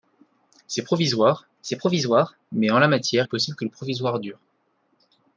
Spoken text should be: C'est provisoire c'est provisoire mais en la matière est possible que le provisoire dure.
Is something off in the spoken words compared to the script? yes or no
no